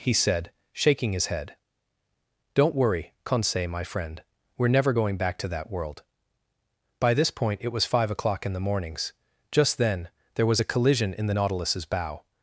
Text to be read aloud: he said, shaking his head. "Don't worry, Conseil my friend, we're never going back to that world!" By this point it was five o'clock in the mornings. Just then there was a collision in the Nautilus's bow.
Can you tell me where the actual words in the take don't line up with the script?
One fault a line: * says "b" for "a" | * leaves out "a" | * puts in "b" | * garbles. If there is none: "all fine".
all fine